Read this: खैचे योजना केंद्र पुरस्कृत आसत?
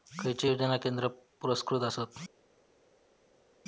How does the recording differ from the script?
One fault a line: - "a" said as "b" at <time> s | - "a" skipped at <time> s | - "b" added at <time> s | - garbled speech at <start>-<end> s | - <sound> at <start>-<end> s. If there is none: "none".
none